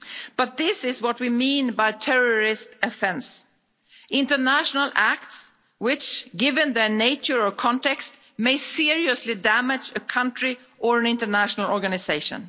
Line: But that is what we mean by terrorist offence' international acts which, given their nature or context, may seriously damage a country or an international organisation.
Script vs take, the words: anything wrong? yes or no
yes